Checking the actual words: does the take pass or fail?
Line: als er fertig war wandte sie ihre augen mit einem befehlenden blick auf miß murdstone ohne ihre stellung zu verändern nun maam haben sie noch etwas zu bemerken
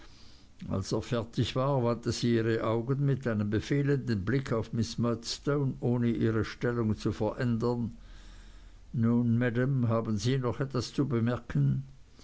pass